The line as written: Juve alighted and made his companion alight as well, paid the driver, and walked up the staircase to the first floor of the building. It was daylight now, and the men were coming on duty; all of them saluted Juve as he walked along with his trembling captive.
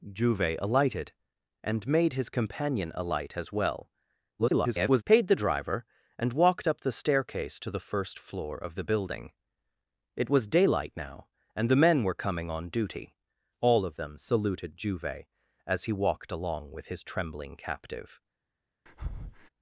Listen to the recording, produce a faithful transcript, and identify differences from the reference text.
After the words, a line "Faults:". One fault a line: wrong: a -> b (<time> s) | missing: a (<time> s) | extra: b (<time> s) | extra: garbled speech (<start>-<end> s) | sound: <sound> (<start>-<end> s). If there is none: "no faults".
Juve alighted and made his companion alight as well, [garbled] paid the driver, and walked up the staircase to the first floor of the building. It was daylight now, and the men were coming on duty; all of them saluted Juve as he walked along with his trembling captive.
Faults:
extra: garbled speech (4.4-5.0 s)
sound: breath (18.9-19.5 s)